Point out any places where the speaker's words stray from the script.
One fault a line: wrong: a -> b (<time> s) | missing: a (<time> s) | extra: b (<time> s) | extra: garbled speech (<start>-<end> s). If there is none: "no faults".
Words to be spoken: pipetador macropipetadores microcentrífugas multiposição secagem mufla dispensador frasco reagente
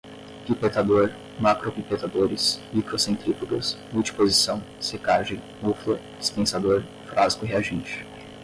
no faults